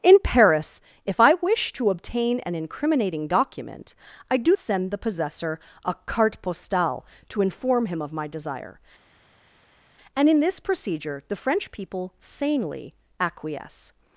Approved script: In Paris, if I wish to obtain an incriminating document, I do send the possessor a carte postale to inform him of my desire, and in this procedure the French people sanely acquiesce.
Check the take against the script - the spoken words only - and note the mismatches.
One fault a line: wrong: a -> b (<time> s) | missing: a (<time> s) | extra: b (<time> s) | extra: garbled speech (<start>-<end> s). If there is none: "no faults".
no faults